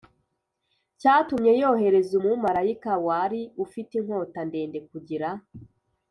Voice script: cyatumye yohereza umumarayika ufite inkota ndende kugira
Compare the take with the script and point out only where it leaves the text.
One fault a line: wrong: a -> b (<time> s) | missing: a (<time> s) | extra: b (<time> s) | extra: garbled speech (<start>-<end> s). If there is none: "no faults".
extra: wari (3.1 s)